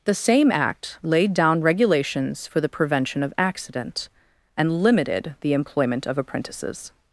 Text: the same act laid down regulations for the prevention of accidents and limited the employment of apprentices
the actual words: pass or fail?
fail